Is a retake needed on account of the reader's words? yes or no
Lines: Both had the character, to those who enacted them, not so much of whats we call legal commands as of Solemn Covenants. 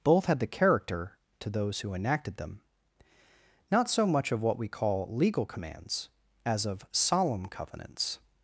yes